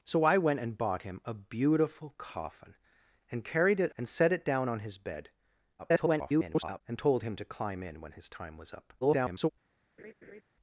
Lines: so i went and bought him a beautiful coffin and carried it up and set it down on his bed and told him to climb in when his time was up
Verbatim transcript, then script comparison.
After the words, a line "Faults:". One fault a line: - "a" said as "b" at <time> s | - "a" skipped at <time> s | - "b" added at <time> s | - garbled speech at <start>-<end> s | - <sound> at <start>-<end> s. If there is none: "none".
so i went and bought him a beautiful coffin and carried it and set it down on his bed [garbled] and told him to climb in when his time was up [garbled]
Faults:
- "up" skipped at 4.0 s
- garbled speech at 5.8-6.8 s
- garbled speech at 9.0-9.5 s
- laugh at 10.0-10.4 s